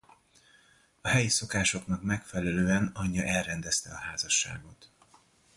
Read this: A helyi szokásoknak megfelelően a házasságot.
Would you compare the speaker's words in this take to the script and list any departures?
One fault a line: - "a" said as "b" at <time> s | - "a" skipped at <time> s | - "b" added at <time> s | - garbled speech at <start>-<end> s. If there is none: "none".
- "anyja elrendezte" added at 2.9 s